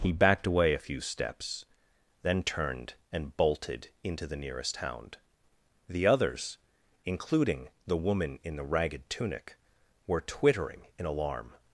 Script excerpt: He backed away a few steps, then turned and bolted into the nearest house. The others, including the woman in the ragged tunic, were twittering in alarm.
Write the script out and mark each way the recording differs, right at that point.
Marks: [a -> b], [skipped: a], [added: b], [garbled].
He backed away a few steps, then turned and bolted into the nearest [house. -> hound] The others, including the woman in the ragged tunic, were twittering in alarm.